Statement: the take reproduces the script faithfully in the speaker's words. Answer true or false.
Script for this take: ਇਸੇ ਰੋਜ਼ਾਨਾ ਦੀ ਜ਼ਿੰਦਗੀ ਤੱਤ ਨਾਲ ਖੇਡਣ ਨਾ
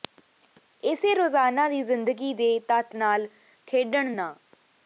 false